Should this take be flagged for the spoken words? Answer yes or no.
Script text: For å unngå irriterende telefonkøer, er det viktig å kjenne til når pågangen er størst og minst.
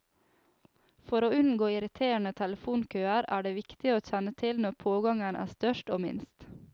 no